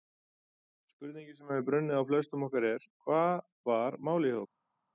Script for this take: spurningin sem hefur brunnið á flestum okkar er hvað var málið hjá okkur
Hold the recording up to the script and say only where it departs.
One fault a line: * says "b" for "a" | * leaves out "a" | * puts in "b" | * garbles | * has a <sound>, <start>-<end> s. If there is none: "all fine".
all fine